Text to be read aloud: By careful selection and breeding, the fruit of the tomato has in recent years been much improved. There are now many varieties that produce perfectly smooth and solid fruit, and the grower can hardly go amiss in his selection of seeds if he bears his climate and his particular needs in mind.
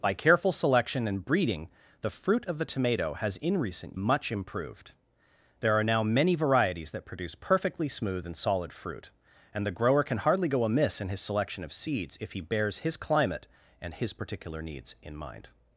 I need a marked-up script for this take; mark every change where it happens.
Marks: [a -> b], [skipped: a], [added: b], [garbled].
By careful selection and breeding, the fruit of the tomato has in recent [skipped: years been] much improved. There are now many varieties that produce perfectly smooth and solid fruit, and the grower can hardly go amiss in his selection of seeds if he bears his climate and his particular needs in mind.